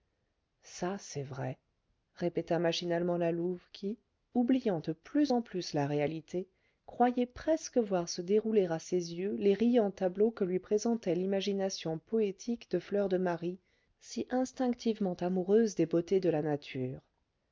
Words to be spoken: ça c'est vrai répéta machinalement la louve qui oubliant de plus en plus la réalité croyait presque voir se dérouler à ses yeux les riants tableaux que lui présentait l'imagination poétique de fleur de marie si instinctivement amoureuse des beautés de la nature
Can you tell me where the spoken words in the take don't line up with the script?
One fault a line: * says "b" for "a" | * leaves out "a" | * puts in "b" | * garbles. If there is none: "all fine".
all fine